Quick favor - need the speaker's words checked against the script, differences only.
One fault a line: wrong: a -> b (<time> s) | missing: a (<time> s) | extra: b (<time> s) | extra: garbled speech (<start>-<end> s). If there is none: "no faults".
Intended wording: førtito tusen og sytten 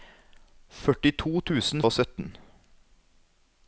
no faults